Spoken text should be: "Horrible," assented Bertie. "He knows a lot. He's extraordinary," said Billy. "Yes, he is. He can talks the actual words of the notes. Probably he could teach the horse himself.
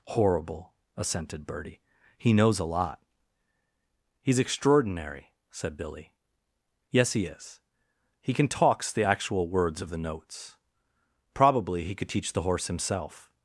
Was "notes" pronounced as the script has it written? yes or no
yes